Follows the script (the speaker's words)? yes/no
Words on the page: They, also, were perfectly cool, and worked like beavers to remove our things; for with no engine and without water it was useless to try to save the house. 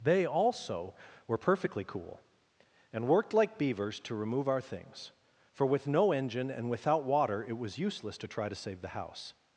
yes